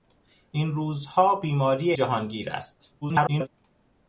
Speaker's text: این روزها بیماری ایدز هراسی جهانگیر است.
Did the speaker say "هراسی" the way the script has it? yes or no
no